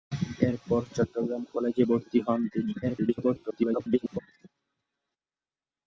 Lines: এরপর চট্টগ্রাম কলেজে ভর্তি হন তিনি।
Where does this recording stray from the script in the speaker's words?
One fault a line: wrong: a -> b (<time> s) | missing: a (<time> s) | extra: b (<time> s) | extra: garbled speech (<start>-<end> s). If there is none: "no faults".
extra: garbled speech (2.8-4.2 s)